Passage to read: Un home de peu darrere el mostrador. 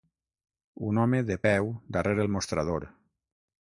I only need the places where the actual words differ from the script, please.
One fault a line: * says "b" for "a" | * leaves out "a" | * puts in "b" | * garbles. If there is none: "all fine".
all fine